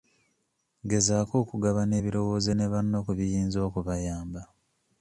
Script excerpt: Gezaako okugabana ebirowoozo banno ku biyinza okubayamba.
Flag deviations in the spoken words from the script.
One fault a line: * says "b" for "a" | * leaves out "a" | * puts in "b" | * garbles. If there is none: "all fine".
* puts in "ne"